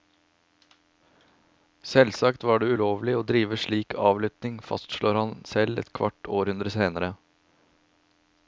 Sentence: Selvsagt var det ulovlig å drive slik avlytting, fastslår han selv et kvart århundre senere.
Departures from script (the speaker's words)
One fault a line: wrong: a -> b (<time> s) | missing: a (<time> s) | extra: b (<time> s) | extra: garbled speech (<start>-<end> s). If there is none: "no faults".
no faults